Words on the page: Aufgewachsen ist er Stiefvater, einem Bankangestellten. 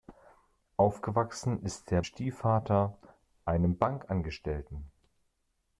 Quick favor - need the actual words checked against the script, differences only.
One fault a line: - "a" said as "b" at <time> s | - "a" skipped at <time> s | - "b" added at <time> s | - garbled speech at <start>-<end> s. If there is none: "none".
none